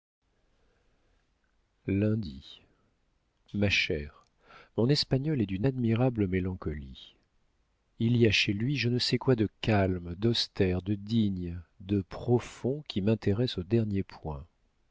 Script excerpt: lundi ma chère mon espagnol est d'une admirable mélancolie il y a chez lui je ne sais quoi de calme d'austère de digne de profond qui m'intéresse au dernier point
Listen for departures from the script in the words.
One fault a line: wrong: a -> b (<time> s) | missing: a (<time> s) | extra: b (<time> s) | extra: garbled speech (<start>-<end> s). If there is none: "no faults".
no faults